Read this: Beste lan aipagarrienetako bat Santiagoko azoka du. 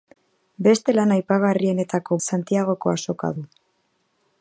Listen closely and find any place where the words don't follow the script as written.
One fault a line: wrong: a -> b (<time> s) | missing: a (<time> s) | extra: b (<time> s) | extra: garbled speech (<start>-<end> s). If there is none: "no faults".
missing: bat (2.2 s)